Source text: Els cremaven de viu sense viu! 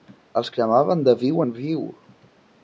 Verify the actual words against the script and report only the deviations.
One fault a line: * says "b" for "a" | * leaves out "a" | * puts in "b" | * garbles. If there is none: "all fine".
* says "en" for "sense"